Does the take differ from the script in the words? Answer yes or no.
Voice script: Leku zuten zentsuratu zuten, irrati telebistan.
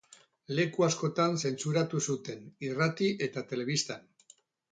yes